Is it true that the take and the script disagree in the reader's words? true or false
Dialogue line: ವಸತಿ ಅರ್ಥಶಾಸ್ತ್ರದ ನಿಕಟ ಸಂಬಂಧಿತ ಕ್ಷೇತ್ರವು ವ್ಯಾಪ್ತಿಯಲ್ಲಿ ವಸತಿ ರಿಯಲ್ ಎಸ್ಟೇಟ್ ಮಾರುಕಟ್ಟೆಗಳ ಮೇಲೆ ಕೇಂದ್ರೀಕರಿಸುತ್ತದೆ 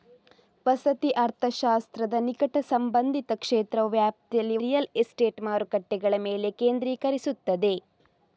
true